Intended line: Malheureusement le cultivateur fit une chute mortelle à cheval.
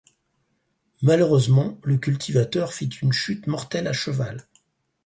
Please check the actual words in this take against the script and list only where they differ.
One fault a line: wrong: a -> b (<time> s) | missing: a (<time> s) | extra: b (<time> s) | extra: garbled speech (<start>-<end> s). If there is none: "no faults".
no faults